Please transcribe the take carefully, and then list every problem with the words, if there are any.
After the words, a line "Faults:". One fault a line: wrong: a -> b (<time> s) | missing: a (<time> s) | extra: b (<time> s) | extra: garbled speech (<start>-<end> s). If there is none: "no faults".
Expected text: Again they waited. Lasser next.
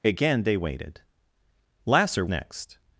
Again they waited. Lasser next.
Faults:
no faults